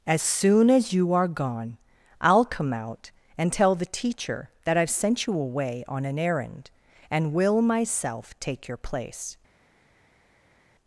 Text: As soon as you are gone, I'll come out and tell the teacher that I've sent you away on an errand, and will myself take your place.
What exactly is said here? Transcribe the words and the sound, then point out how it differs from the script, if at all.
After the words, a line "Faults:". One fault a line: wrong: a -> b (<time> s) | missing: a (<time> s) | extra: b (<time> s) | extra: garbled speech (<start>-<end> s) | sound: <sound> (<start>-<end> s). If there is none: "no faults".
As soon as you are gone, I'll come out and tell the teacher that I've sent you away on an errand, and will myself take your place.
Faults:
no faults